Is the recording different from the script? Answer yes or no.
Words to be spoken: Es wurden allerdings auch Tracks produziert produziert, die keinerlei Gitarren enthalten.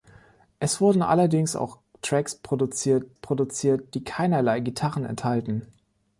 no